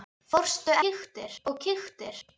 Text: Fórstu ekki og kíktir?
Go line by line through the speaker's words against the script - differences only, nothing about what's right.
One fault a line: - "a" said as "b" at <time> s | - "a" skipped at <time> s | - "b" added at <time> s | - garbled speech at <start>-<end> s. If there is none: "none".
- "ekki" said as "kíktir" at 0.8 s